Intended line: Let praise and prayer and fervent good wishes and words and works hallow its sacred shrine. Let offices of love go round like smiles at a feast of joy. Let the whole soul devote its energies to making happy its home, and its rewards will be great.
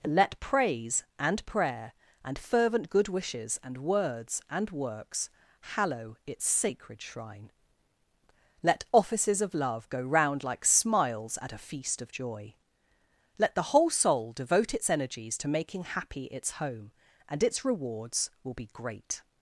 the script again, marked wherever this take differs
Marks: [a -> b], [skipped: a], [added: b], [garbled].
Let praise and prayer and fervent good wishes and words and works hallow its sacred shrine. Let offices of love go round like smiles at a feast of joy. Let the whole soul devote its energies to making happy its home, and its rewards will be great.